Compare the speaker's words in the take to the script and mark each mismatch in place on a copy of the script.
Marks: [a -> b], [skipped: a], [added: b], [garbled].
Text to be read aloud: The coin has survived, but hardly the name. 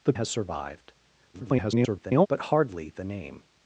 The [skipped: coin] has survived, [garbled] but hardly the name.